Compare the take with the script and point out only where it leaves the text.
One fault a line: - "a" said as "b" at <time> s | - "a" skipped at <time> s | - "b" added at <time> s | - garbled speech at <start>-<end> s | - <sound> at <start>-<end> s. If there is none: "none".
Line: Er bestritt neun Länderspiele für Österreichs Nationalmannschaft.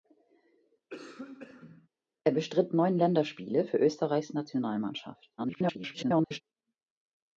- cough at 0.9-1.9 s
- garbled speech at 5.4-6.4 s